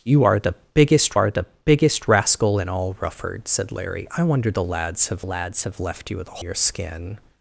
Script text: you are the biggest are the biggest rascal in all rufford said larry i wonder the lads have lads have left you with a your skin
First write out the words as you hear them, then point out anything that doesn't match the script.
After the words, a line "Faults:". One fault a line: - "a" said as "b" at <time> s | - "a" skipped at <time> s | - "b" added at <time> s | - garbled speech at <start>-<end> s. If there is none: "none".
you are the biggest are the biggest rascal in all rufford said larry i wonder the lads have lads have left you with a your skin
Faults:
none